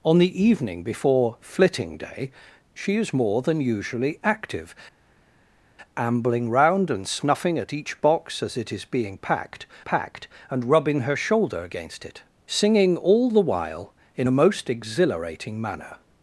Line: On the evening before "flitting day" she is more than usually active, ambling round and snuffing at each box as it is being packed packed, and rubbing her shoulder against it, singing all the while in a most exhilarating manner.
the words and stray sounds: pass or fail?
pass